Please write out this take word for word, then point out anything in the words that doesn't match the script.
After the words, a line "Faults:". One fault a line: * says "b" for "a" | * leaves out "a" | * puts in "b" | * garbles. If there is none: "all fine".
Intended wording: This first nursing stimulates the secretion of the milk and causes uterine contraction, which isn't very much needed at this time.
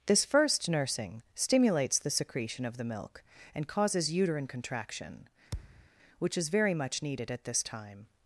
This first nursing stimulates the secretion of the milk and causes uterine contraction, which is very much needed at this time.
Faults:
* says "is" for "isn't"